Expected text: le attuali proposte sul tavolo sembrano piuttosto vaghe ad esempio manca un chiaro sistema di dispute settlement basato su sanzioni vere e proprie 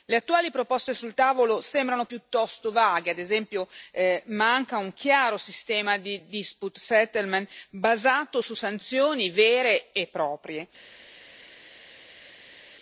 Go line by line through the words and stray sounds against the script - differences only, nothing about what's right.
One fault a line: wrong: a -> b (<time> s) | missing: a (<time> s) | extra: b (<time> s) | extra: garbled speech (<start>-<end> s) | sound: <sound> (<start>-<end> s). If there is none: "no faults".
no faults